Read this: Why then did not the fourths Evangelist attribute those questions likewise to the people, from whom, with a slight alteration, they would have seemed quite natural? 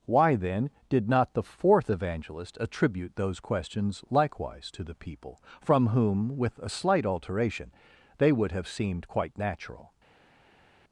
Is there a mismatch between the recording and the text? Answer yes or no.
yes